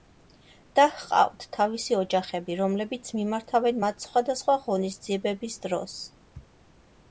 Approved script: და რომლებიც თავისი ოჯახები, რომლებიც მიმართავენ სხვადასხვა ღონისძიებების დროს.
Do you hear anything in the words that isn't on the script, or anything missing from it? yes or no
yes